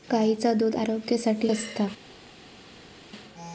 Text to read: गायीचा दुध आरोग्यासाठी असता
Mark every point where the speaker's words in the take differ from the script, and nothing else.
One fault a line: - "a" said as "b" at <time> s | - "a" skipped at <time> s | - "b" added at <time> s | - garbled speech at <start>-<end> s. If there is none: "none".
none